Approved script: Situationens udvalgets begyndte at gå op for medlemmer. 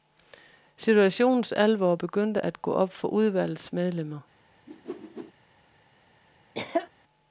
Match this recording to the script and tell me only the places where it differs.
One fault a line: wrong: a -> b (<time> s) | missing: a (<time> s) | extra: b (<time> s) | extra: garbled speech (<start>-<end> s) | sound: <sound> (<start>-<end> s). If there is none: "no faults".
wrong: udvalgets -> alvor (1.5 s)
extra: udvalgets (3.1 s)
sound: whoosh (4.7-5.3 s)
sound: cough (6.5-6.9 s)